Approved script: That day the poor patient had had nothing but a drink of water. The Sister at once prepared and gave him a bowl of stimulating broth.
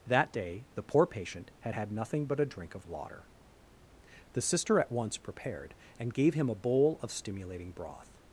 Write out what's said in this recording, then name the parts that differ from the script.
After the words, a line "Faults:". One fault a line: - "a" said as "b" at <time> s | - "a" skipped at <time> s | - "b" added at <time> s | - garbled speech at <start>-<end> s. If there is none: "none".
That day the poor patient had had nothing but a drink of water. The Sister at once prepared and gave him a bowl of stimulating broth.
Faults:
none